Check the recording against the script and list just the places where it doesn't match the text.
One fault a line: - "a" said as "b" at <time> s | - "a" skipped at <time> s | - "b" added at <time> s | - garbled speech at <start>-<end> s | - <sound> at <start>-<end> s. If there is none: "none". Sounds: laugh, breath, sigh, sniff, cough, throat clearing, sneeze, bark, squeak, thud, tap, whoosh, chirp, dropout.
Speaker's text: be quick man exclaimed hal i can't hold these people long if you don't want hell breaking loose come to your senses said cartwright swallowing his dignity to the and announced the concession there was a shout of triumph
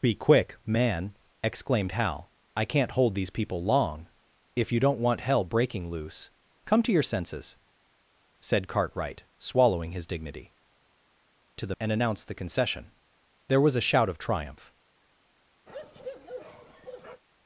- bark at 15.7-17.2 s